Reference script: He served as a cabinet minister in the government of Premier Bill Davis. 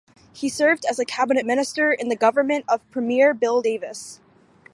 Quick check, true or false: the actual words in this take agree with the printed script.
true